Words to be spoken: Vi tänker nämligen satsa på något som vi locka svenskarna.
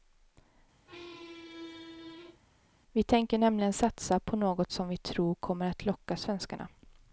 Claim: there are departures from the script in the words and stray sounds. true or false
true